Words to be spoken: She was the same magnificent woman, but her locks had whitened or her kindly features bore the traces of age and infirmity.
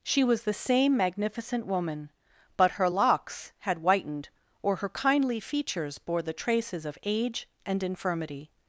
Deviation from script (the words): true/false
false